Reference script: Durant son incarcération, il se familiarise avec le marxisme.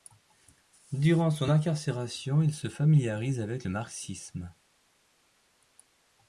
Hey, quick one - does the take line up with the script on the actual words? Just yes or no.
yes